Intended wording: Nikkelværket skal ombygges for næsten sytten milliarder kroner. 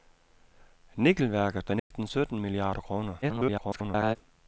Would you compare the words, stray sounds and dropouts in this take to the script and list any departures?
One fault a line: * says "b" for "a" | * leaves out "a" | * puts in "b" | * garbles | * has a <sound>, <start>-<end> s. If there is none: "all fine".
* leaves out "skal ombygges"
* has a dropout, 1.8-1.9 s
* garbles